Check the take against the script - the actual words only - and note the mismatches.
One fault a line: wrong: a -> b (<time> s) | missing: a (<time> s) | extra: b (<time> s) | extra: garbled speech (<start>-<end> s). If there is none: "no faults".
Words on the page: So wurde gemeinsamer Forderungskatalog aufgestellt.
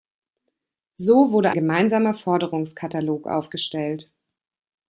no faults